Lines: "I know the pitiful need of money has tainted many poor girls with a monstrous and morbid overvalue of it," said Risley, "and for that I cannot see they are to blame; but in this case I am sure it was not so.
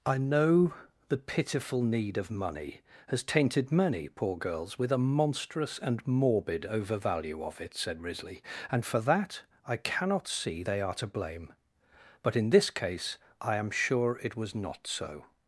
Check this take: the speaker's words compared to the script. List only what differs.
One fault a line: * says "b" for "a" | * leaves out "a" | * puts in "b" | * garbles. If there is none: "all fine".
all fine